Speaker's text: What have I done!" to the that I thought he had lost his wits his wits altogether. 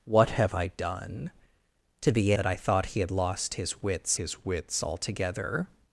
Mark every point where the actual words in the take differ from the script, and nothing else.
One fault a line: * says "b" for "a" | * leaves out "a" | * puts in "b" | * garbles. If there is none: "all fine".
all fine